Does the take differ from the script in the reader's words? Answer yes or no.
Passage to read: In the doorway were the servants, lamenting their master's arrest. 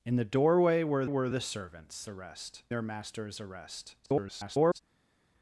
yes